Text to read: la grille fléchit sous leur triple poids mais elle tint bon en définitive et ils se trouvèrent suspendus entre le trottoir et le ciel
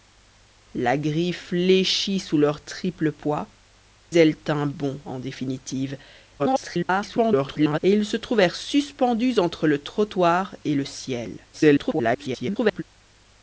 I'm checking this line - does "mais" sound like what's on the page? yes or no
no